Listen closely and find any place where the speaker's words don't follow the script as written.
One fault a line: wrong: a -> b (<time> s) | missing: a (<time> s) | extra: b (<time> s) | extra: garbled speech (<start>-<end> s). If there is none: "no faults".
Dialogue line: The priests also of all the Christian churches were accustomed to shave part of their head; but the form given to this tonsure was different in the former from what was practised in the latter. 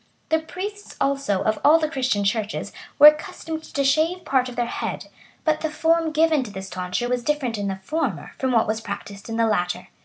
no faults